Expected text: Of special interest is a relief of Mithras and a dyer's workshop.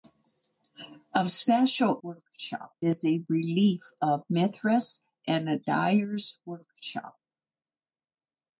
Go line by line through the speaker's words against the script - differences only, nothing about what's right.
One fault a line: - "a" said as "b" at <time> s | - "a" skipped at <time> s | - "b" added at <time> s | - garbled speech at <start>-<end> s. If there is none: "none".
- "interest" said as "workshop" at 2.0 s